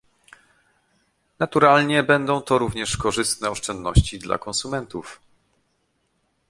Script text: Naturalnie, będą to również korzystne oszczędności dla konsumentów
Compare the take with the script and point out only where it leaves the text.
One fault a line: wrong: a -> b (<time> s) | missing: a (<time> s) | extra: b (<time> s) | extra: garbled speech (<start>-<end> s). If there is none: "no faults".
no faults